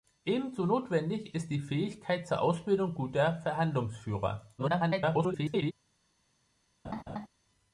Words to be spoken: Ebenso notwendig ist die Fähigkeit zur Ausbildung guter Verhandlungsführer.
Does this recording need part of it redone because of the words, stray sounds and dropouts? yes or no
yes